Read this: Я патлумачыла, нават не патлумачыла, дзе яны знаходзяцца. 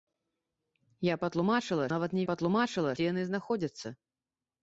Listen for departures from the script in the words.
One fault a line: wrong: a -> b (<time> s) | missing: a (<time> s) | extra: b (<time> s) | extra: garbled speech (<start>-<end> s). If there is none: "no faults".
no faults